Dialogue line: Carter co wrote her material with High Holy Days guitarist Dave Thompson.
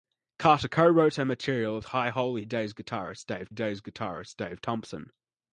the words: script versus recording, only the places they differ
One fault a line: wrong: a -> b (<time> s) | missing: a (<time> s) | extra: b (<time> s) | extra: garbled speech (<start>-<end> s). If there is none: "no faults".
extra: Days guitarist Dave (3.5 s)